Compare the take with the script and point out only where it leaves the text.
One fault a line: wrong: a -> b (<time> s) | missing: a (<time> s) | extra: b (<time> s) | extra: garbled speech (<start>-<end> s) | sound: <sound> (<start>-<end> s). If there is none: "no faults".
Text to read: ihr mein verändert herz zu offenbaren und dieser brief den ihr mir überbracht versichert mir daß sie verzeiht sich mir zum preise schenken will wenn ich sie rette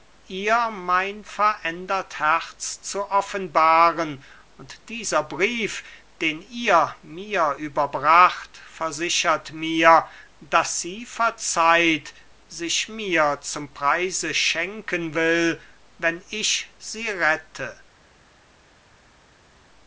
no faults